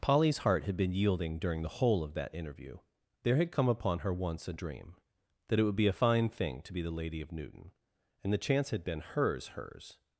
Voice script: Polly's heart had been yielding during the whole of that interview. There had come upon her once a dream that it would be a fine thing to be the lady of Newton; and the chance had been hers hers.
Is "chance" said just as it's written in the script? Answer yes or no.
yes